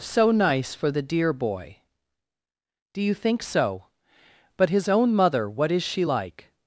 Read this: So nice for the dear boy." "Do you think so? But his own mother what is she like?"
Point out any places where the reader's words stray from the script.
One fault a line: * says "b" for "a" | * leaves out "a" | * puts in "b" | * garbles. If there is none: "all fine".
all fine